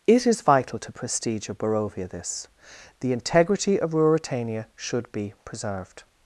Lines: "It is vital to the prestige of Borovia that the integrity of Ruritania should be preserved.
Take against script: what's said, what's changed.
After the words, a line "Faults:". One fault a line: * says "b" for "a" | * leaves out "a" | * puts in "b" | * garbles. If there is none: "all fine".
"It is vital to prestige of Borovia this the integrity of Ruritania should be preserved.
Faults:
* leaves out "the"
* says "this" for "that"